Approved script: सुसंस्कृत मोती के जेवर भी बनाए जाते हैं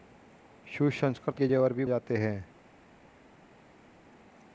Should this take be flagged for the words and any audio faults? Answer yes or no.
yes